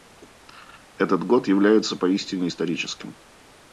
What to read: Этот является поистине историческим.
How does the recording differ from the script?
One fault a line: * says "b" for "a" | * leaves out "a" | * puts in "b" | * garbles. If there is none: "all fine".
* puts in "год"